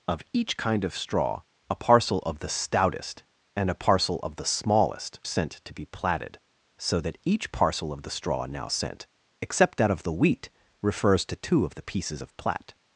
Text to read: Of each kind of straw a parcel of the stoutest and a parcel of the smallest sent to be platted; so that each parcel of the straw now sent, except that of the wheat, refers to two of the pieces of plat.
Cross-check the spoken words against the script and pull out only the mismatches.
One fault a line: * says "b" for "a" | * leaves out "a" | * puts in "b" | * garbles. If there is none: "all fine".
all fine